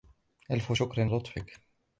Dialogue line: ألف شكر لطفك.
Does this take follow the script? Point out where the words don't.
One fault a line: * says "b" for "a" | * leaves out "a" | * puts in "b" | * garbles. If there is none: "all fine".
all fine